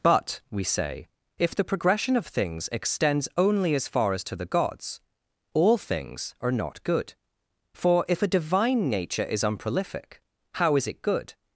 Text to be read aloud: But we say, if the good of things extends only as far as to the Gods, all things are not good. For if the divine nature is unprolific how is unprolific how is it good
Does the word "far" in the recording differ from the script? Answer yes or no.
no